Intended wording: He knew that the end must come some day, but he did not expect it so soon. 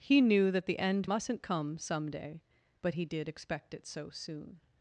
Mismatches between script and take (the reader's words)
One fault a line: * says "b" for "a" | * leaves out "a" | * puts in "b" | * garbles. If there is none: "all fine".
* says "mustn't" for "must"
* leaves out "not"